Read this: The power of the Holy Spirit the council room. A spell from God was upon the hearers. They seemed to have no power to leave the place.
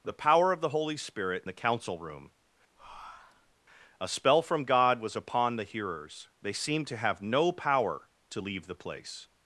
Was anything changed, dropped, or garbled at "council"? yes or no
no